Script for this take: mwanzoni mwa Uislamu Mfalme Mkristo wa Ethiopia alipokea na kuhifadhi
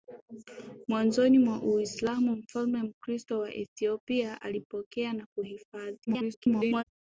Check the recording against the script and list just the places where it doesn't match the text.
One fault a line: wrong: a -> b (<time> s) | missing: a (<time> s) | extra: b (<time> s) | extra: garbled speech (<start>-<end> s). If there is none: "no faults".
extra: garbled speech (6.1-6.8 s)